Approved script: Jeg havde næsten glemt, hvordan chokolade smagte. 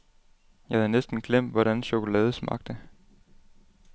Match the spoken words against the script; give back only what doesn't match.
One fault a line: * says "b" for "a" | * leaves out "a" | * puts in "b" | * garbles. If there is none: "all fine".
all fine